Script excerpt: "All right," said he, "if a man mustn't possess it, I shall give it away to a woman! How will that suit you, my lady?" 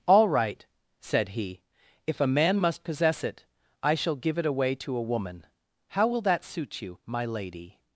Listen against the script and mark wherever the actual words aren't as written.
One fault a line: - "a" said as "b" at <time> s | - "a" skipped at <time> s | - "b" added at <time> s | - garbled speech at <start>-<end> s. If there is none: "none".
- "mustn't" said as "must" at 2.6 s